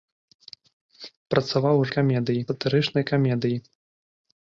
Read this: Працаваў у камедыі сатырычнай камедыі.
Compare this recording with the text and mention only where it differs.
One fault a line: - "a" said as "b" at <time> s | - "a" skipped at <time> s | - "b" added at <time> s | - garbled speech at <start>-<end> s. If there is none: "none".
none